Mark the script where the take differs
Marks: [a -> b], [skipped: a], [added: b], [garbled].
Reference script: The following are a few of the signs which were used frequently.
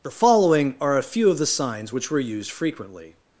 The following are a few of the signs which were used frequently.